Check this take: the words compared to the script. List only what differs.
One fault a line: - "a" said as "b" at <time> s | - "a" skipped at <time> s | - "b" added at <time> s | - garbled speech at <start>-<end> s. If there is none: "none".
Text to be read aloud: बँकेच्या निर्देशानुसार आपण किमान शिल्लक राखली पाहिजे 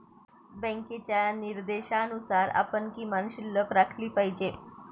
none